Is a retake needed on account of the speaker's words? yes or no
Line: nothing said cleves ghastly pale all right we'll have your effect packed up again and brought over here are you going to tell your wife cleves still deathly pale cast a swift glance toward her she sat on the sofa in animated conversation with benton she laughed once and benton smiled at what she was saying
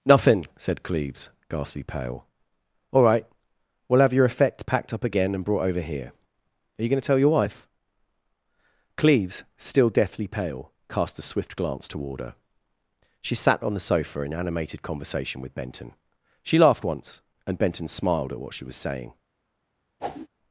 no